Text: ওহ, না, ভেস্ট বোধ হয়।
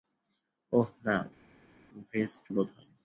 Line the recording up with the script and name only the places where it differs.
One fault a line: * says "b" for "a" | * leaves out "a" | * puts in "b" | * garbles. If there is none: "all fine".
all fine